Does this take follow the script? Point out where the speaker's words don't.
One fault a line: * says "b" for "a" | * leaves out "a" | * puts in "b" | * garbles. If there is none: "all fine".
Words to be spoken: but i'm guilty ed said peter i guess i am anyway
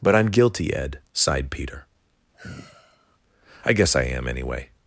* says "sighed" for "said"